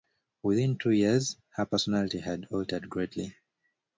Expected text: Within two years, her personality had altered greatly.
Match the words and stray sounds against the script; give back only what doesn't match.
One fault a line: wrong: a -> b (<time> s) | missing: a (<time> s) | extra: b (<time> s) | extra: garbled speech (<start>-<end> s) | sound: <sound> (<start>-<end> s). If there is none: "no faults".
no faults